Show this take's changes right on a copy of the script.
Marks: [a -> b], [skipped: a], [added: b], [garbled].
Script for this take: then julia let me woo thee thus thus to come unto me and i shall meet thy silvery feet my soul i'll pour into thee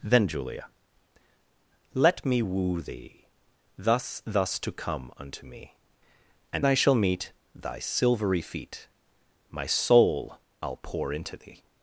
then julia let me woo thee thus thus to come unto me and i shall meet thy silvery feet my soul i'll pour into thee